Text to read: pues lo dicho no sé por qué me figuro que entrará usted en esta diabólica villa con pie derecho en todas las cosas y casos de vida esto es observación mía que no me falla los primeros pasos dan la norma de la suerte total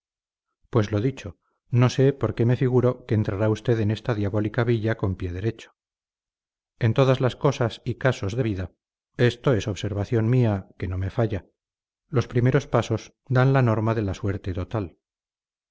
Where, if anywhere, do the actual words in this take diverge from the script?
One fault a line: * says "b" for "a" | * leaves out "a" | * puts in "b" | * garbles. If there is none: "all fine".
all fine